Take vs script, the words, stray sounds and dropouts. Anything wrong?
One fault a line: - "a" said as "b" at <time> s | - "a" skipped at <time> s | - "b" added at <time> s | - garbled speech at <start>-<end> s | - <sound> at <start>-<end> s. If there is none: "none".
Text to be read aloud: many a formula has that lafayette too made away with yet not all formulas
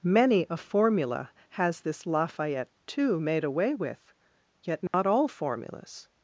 - "that" said as "this" at 1.8 s
- dropout at 4.9-4.9 s